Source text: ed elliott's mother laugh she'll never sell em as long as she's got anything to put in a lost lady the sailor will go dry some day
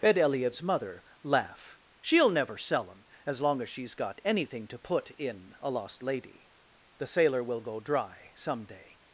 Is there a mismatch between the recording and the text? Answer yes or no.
no